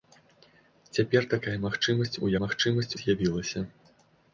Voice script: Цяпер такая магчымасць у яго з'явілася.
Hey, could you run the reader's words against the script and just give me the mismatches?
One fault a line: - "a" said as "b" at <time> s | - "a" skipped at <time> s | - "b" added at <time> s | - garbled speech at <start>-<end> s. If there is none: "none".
- "яго" said as "магчымасць" at 2.4 s